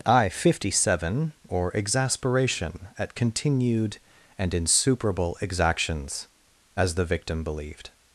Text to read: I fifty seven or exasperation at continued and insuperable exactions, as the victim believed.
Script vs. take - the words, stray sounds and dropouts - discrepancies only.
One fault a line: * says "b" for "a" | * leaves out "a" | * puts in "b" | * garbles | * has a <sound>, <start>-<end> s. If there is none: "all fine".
all fine